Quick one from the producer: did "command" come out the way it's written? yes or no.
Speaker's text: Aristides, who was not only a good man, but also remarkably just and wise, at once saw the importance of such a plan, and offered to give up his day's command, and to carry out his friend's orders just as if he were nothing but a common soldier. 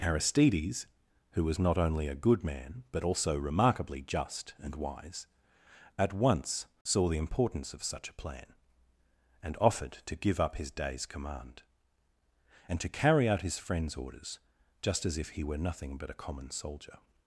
yes